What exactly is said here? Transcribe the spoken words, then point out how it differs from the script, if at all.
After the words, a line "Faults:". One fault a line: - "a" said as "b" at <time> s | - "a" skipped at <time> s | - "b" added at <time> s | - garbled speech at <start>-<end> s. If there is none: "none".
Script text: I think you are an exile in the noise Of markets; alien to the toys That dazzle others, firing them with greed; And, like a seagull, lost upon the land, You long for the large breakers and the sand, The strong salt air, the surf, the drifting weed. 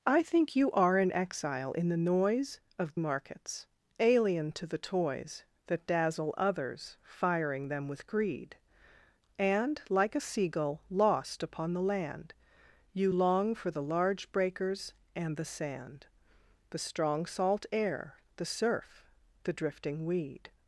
I think you are an exile in the noise Of markets; alien to the toys That dazzle others, firing them with greed; And, like a seagull, lost upon the land, You long for the large breakers and the sand, The strong salt air, the surf, the drifting weed.
Faults:
none